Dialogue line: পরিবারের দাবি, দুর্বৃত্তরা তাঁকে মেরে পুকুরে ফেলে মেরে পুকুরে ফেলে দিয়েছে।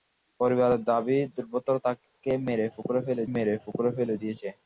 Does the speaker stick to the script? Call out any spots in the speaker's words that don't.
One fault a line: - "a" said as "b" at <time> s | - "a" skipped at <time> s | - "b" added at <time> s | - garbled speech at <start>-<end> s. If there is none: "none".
none